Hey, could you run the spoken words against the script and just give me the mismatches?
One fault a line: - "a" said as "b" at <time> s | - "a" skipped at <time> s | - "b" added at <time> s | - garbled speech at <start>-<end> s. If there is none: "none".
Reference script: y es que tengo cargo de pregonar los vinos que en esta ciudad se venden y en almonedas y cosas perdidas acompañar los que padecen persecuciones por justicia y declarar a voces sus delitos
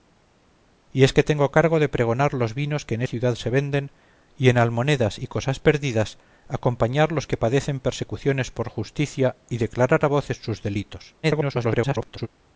- "esta" skipped at 3.0 s
- garbled speech at 11.2-12.3 s